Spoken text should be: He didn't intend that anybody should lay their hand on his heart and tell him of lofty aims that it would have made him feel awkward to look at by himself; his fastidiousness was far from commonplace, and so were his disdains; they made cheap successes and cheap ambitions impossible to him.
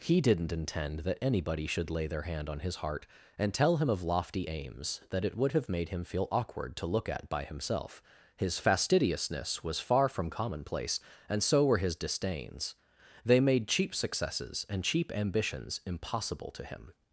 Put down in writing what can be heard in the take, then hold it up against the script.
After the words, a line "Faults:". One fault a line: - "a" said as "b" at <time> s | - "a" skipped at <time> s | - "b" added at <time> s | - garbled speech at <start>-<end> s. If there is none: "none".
He didn't intend that anybody should lay their hand on his heart and tell him of lofty aims that it would have made him feel awkward to look at by himself; his fastidiousness was far from commonplace, and so were his disdains; they made cheap successes and cheap ambitions impossible to him.
Faults:
none